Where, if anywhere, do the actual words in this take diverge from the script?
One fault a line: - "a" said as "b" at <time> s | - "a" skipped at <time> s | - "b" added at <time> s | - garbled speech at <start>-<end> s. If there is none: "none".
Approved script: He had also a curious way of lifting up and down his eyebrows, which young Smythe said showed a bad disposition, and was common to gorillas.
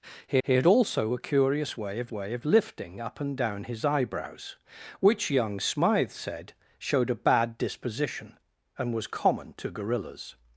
- "he" added at 0.4 s
- "way of" added at 2.1 s